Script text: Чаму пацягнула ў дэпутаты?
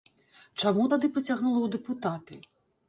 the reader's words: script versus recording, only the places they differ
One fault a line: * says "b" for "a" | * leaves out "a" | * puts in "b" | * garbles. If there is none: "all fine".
* puts in "тады"